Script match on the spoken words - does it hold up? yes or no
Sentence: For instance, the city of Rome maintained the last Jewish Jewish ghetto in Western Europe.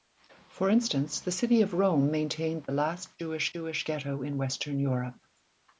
yes